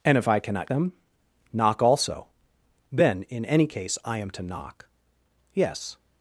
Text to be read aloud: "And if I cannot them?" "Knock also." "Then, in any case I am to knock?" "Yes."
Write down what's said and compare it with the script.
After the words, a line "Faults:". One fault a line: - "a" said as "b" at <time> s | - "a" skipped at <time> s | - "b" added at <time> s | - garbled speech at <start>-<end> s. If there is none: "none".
"And if I cannot them?" "Knock also." "Then, in any case I am to knock?" "Yes."
Faults:
none